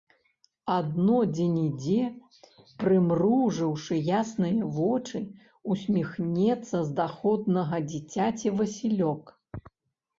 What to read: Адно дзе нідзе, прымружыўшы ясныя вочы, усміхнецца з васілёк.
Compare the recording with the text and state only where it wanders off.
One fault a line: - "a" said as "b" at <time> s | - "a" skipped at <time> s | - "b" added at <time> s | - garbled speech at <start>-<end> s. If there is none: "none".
- "даходнага дзіцяці" added at 7.0 s